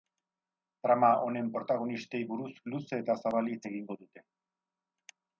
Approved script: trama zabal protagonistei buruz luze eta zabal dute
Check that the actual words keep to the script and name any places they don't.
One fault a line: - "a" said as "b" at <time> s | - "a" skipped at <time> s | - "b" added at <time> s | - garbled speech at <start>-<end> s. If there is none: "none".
- "zabal" said as "honen" at 1.2 s
- "hitz egingo" added at 3.5 s